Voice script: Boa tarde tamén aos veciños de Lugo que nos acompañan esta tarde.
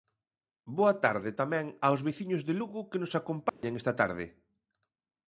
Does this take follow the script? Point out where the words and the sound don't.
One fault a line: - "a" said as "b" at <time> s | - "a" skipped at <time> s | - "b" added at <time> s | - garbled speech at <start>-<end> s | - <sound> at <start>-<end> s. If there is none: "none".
- dropout at 3.5-3.6 s